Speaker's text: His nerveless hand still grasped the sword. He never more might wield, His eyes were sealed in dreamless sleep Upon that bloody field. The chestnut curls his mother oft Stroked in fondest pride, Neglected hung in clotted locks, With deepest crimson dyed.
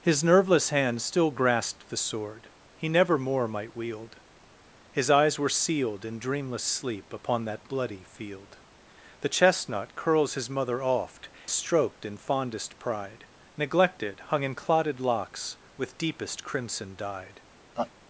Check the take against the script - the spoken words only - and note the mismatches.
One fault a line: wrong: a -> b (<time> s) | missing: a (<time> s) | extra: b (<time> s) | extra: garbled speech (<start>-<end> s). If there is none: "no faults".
no faults